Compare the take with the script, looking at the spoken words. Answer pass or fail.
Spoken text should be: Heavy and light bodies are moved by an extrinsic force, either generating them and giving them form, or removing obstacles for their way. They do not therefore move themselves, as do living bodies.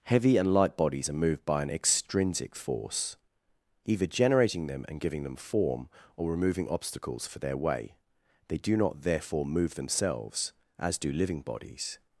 pass